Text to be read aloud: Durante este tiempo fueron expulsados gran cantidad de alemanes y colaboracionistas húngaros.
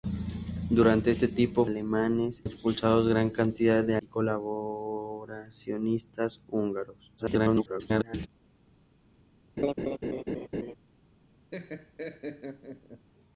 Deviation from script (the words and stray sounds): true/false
true